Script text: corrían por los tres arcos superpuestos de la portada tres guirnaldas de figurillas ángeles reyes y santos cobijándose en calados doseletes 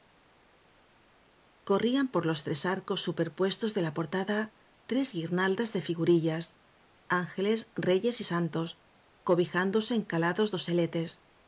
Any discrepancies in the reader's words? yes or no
no